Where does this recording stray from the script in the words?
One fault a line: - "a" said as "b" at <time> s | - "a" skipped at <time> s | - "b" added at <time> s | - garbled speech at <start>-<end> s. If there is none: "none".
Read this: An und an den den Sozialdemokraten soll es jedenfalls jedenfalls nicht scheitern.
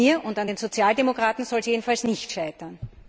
- "mir" added at 0.1 s
- "den" skipped at 0.6 s
- "jedenfalls" skipped at 2.0 s